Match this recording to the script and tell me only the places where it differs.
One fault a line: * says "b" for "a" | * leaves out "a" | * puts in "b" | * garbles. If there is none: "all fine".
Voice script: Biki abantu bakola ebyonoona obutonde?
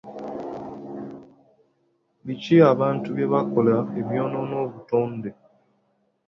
* puts in "bye"